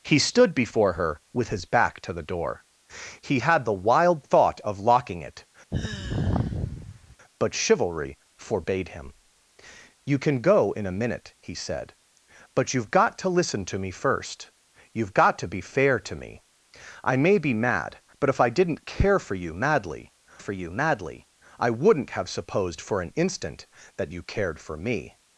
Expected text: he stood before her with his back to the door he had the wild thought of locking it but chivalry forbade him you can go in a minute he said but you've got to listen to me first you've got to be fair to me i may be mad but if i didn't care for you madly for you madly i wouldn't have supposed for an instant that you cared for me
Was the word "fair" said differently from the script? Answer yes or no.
no